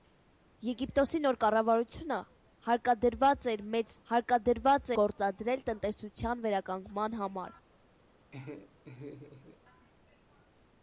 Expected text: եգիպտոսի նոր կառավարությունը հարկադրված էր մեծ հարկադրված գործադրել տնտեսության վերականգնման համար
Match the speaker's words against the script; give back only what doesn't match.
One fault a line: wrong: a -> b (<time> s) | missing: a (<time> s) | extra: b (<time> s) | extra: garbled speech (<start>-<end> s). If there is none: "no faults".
no faults